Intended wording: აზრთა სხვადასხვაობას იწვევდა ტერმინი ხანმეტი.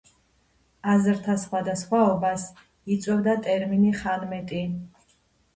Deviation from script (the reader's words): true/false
false